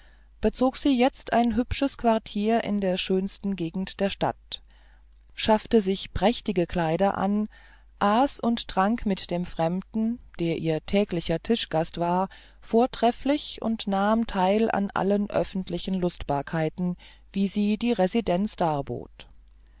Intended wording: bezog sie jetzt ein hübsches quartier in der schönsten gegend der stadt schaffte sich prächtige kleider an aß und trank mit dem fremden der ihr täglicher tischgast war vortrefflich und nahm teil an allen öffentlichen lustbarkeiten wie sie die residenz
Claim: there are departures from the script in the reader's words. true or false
false